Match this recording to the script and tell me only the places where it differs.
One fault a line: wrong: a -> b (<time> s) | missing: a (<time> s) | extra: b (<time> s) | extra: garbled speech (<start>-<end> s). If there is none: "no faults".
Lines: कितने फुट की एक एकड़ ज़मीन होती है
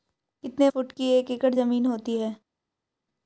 no faults